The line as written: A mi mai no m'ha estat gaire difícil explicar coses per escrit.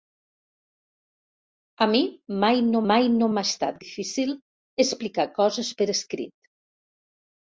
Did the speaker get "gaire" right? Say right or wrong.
wrong